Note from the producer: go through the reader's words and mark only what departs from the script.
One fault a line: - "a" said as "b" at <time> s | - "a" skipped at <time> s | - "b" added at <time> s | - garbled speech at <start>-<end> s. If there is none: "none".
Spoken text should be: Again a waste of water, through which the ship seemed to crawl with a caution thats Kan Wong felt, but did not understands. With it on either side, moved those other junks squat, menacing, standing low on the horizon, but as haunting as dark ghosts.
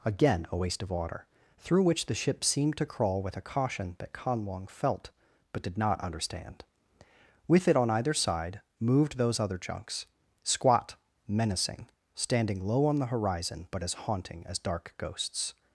- "thats" said as "that" at 4.0 s
- "understands" said as "understand" at 6.0 s